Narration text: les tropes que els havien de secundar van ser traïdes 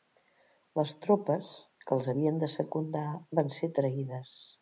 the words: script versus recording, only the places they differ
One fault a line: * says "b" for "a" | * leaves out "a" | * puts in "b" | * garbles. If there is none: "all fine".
all fine